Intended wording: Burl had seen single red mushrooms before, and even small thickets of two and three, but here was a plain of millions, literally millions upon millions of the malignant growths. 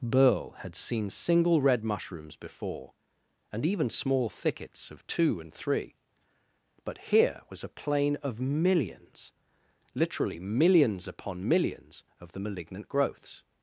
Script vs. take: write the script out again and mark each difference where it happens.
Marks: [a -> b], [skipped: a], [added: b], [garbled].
Burl had seen single red mushrooms before, and even small thickets of two and three, but here was a plain of millions, literally millions upon millions of the malignant growths.